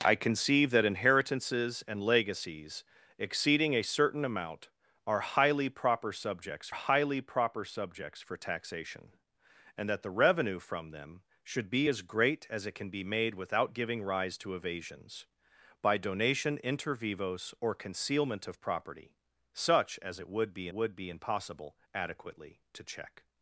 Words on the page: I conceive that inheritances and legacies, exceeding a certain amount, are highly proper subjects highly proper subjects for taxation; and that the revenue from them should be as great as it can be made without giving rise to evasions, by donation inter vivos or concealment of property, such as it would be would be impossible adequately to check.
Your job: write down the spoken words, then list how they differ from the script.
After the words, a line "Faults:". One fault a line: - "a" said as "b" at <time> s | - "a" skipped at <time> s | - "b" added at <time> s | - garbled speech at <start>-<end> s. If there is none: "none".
I conceive that inheritances and legacies, exceeding a certain amount, are highly proper subjects highly proper subjects for taxation; and that the revenue from them should be as great as it can be made without giving rise to evasions, by donation inter vivos or concealment of property, such as it would be would be impossible adequately to check.
Faults:
none